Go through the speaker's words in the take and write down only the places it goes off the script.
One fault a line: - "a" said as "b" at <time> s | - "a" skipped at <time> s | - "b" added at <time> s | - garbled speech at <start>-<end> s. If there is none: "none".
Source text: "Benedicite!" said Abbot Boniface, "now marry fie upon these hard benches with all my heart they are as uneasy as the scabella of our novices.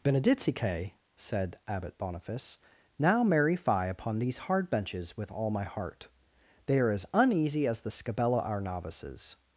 - "of" skipped at 8.4 s